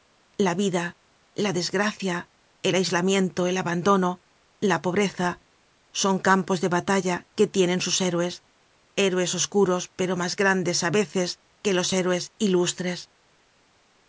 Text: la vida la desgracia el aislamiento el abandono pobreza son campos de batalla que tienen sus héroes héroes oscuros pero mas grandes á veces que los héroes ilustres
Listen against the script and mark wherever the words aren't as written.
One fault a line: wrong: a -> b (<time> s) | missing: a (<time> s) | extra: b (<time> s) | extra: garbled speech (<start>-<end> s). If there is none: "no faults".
extra: la (4.6 s)